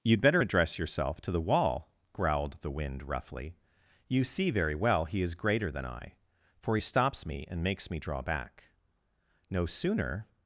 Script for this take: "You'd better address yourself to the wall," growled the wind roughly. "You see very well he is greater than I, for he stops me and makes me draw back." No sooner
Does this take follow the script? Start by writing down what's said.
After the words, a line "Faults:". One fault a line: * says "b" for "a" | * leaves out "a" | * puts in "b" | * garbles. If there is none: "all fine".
"You'd better address yourself to the wall," growled the wind roughly. "You see very well he is greater than I, for he stops me and makes me draw back." No sooner
Faults:
all fine